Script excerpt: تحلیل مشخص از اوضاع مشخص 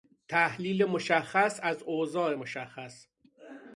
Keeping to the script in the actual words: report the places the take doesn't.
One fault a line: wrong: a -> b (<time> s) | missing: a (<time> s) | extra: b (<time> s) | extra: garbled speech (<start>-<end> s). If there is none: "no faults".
no faults